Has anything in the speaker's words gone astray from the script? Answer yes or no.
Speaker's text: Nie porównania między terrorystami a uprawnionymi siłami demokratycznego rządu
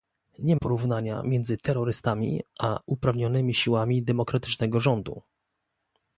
no